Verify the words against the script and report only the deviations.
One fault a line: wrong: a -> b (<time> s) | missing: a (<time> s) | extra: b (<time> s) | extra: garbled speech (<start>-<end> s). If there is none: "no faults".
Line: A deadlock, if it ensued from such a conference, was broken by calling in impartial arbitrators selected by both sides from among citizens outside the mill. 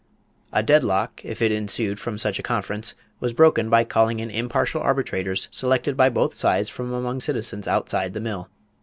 no faults